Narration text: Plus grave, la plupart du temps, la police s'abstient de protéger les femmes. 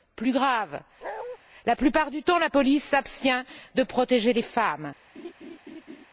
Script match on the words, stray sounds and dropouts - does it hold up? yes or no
no